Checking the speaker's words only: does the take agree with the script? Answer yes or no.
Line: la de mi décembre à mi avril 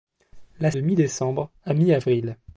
yes